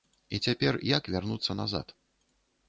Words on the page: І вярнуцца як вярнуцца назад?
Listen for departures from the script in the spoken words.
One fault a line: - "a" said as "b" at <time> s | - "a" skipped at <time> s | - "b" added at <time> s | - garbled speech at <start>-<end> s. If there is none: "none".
- "вярнуцца" said as "цяпер" at 0.5 s